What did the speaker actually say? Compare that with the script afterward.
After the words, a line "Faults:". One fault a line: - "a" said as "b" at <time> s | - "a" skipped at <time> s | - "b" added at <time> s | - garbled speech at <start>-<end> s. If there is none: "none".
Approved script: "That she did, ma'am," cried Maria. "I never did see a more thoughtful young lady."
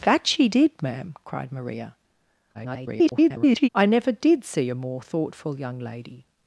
"That she did, ma'am," cried Maria. [garbled] "I never did see a more thoughtful young lady."
Faults:
- garbled speech at 2.5-3.7 s